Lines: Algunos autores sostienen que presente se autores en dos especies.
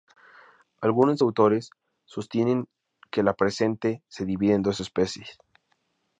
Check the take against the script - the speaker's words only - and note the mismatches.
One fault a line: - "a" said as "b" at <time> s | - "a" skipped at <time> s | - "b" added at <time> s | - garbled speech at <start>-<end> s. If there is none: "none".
- "la" added at 3.2 s
- "autores" said as "divide" at 4.2 s